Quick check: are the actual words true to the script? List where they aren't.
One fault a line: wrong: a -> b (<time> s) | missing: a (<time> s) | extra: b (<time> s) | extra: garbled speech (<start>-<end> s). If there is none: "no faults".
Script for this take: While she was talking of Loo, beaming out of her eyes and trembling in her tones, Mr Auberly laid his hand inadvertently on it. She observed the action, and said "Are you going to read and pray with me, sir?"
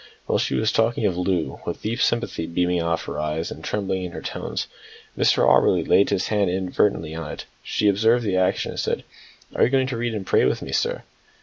extra: with deep sympathy (1.6 s)